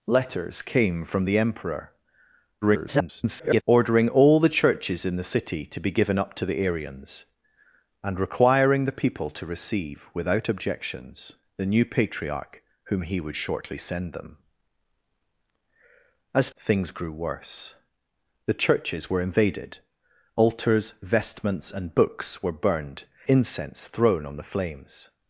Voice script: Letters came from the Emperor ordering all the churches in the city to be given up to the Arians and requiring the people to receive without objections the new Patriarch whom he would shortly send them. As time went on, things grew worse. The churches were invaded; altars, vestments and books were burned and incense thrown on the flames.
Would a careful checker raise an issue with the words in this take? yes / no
yes